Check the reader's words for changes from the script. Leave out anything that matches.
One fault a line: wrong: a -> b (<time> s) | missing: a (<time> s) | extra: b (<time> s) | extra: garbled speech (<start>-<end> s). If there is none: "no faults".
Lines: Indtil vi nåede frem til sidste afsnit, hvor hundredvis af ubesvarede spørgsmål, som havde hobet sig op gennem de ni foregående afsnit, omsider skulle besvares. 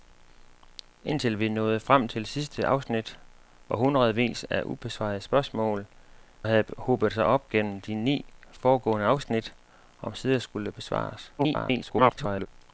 missing: som (5.9 s)
extra: garbled speech (11.4-12.5 s)